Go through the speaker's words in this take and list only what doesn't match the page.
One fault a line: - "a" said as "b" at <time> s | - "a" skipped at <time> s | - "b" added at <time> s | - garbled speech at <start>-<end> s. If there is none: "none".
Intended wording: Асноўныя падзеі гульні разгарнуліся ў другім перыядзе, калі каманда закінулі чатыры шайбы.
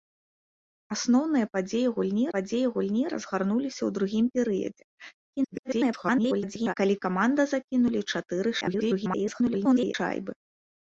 - "падзеі гульні" added at 2.4 s
- garbled speech at 5.3-6.7 s
- garbled speech at 8.6-9.9 s